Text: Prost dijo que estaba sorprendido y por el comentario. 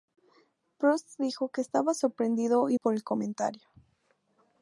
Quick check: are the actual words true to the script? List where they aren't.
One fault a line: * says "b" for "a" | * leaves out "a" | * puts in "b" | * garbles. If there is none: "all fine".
all fine